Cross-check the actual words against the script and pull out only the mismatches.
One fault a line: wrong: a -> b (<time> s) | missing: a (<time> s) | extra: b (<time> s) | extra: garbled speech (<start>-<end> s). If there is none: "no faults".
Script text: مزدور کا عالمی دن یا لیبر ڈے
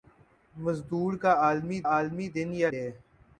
extra: عالمی (1.9 s)
missing: لیبر (2.7 s)